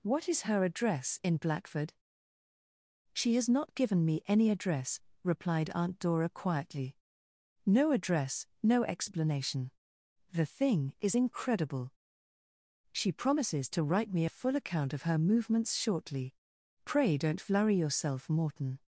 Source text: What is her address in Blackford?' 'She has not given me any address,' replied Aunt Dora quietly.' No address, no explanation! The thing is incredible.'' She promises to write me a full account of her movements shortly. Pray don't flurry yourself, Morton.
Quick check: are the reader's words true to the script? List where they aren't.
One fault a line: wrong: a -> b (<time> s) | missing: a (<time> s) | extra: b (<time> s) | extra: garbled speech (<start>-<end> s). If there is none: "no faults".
no faults